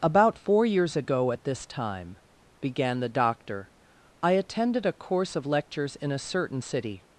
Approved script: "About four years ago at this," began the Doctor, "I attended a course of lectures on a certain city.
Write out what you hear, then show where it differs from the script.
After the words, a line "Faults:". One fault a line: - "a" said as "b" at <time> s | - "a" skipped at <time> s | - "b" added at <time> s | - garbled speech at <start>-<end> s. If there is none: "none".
"About four years ago at this time," began the Doctor, "I attended a course of lectures in a certain city.
Faults:
- "time" added at 1.7 s
- "on" said as "in" at 6.0 s